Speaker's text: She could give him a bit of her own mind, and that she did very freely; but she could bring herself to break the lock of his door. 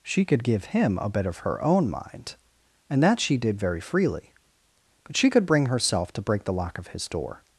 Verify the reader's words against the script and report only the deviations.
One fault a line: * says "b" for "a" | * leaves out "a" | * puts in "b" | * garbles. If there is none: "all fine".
all fine